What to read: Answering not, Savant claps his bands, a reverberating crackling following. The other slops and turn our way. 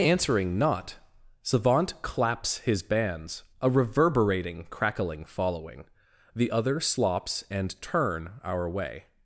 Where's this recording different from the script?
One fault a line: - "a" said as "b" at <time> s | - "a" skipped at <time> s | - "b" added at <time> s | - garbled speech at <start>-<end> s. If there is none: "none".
none